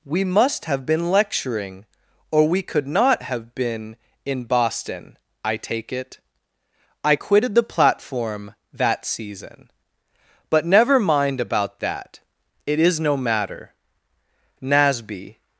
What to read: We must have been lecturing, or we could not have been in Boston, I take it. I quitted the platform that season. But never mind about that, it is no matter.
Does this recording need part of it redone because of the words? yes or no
yes